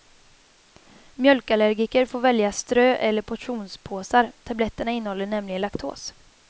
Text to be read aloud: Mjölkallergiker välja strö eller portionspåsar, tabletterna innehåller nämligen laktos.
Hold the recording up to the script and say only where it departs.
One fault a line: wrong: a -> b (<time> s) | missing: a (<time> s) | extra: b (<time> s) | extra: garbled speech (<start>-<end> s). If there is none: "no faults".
extra: får (2.0 s)